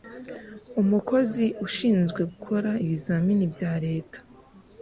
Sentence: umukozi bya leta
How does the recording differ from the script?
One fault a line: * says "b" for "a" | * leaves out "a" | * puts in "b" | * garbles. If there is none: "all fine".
* puts in "ushinzwe gukora ibizamini"